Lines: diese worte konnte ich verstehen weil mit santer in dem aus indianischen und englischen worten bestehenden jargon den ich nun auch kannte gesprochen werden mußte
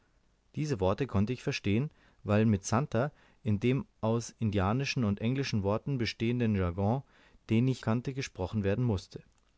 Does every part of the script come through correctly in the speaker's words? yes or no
no